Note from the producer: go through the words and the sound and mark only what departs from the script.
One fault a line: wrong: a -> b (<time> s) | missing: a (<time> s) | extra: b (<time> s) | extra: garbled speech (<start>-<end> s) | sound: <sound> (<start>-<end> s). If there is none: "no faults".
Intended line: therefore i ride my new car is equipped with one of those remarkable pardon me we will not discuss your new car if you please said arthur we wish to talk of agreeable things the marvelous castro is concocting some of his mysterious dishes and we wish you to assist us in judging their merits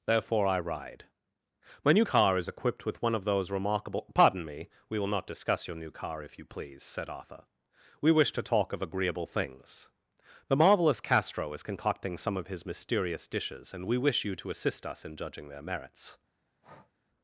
sound: breath (16.6-16.9 s)